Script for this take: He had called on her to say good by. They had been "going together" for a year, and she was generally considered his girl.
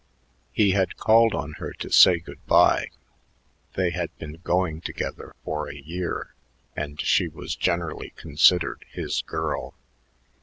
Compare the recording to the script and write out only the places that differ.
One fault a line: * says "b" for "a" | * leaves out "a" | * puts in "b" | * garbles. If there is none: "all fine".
all fine